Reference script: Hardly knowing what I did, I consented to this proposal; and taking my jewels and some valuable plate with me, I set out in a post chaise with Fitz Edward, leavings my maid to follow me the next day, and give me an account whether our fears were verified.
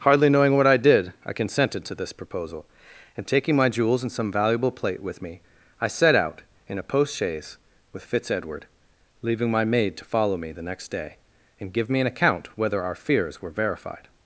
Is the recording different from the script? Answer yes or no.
yes